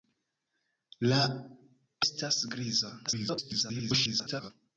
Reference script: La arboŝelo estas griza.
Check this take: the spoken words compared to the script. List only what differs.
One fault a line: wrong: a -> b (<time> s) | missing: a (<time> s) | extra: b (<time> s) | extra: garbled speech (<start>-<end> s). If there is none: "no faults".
missing: arboŝelo (1.2 s)
extra: garbled speech (3.1-4.5 s)